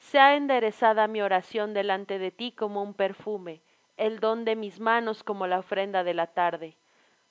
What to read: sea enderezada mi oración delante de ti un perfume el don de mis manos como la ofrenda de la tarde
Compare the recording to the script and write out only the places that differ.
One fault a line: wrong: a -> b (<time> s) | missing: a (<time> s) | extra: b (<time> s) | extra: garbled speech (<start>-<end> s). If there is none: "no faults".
extra: como (2.5 s)